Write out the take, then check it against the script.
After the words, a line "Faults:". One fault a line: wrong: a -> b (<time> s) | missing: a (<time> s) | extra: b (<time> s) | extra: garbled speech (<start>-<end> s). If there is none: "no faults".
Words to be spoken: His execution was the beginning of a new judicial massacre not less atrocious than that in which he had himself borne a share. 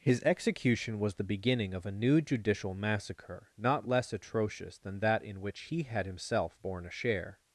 His execution was the beginning of a new judicial massacre not less atrocious than that in which he had himself borne a share.
Faults:
no faults